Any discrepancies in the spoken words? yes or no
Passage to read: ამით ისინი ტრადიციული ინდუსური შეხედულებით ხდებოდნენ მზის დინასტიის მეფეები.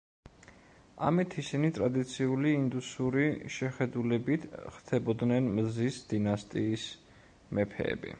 no